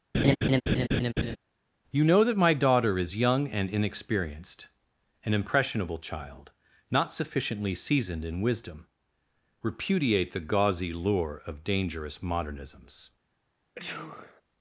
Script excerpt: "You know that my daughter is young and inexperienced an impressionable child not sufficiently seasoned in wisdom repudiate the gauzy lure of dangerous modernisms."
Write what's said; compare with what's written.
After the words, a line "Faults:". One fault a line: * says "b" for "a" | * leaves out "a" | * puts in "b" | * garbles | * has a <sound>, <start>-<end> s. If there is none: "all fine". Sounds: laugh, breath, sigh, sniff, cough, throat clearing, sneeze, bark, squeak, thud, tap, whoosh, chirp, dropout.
"You know that my daughter is young and inexperienced an impressionable child not sufficiently seasoned in wisdom repudiate the gauzy lure of dangerous modernisms."
Faults:
* has a laugh, 0.1-1.4 s
* has a sneeze, 13.8-14.4 s